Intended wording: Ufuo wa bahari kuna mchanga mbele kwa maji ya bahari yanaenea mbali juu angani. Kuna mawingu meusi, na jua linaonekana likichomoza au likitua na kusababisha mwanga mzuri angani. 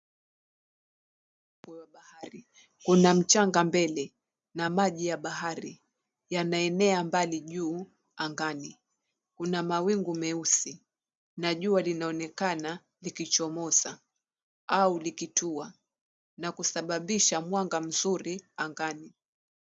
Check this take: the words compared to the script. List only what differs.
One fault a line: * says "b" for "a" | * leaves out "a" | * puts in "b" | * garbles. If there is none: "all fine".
* says "na" for "kwa"